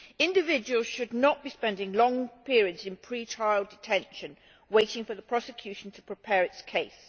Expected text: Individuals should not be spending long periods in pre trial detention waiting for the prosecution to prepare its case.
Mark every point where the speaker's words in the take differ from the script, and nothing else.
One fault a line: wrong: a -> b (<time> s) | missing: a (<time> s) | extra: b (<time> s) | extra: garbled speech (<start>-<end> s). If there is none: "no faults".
no faults